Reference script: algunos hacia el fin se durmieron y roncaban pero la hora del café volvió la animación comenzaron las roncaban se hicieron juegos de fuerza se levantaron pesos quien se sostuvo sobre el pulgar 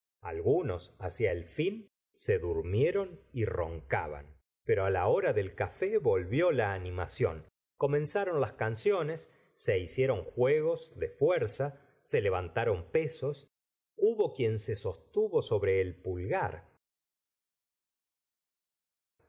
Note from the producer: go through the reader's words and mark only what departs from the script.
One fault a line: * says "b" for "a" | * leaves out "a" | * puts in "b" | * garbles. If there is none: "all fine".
* says "canciones" for "roncaban"
* puts in "hubo"